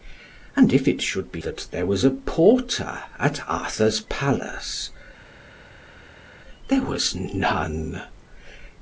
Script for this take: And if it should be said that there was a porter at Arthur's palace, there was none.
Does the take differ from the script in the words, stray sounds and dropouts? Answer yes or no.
yes